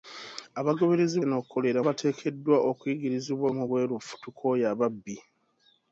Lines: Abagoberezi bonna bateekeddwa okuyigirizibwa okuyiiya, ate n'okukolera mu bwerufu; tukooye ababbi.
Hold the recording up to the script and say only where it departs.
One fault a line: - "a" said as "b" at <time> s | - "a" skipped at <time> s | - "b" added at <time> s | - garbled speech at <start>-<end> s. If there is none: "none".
- "bonna" said as "n'okukolera" at 1.3 s
- "okuyiiya ate n'okukolera" skipped at 3.5 s